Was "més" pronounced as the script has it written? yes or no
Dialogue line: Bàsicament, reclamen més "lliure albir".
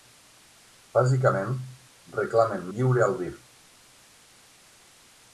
no